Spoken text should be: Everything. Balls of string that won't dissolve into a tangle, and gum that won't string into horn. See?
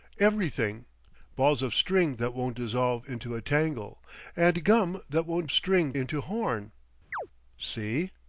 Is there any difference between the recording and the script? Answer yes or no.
no